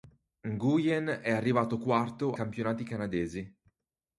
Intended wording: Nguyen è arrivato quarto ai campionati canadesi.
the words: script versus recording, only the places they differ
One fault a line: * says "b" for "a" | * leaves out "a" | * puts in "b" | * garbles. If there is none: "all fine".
* leaves out "ai"